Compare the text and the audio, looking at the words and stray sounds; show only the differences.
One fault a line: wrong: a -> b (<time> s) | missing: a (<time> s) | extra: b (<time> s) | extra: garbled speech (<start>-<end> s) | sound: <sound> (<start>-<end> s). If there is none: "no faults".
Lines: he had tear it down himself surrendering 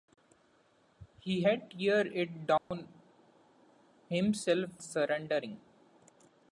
sound: dropout (2.6-2.7 s)